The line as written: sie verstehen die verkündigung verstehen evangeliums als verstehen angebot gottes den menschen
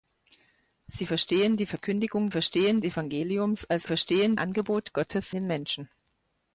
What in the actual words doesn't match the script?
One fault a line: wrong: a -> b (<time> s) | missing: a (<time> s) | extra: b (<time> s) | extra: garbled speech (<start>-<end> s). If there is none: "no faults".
no faults